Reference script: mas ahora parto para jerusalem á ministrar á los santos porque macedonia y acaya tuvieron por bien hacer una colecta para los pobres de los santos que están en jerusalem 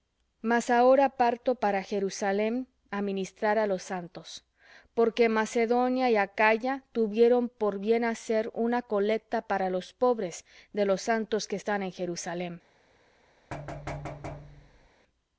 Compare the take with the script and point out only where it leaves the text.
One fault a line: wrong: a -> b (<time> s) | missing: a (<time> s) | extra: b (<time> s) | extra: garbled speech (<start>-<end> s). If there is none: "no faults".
no faults